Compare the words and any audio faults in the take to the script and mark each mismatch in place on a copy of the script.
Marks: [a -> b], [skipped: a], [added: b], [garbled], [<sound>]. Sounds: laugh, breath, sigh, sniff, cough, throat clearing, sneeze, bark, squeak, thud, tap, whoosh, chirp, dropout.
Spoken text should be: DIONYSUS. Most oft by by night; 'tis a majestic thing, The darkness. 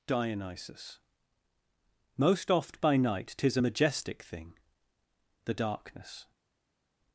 DIONYSUS. Most oft by [skipped: by] night; 'tis a majestic thing, The darkness.